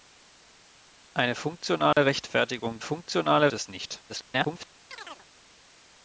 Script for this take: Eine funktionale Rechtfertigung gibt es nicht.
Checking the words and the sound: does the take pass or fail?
fail